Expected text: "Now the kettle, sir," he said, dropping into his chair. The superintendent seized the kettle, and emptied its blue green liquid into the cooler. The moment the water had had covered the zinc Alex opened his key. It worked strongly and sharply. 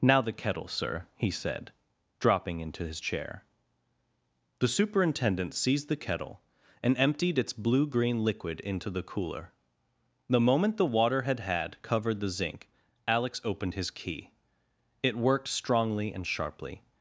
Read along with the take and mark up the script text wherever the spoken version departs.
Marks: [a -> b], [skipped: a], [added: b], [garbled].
"Now the kettle, sir," he said, dropping into his chair. The superintendent seized the kettle, and emptied its blue green liquid into the cooler. The moment the water had had covered the zinc Alex opened his key. It worked strongly and sharply.